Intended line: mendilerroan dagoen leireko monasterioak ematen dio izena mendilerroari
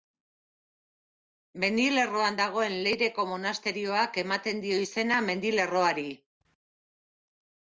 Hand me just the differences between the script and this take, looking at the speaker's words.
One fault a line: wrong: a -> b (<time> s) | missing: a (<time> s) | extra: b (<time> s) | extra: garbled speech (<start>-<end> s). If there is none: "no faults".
no faults